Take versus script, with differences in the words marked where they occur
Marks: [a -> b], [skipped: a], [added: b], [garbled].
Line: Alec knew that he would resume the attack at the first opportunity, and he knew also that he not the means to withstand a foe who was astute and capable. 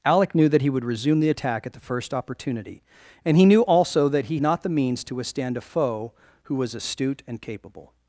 Alec knew that he would resume the attack at the first opportunity, and he knew also that he not the means to withstand a foe who was astute and capable.